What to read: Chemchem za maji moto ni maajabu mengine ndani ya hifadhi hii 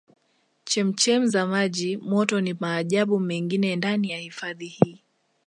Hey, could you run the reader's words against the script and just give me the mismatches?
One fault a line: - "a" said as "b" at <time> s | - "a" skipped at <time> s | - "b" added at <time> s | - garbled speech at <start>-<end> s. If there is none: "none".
none